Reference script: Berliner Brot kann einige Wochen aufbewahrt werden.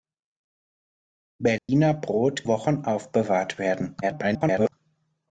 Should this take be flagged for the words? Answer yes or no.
yes